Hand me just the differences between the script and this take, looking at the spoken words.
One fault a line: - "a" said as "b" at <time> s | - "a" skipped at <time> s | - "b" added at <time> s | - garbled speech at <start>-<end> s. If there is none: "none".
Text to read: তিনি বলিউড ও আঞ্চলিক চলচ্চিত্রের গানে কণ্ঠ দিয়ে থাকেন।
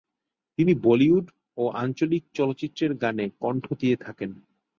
none